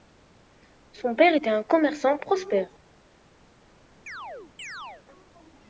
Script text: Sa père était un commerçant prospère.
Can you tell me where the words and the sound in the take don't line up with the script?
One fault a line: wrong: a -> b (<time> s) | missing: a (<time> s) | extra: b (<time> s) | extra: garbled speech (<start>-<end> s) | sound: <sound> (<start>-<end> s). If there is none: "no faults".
wrong: Sa -> Son (0.9 s)
sound: chirp (4.1-5.0 s)